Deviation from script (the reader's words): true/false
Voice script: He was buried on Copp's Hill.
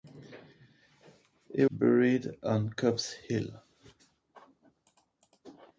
true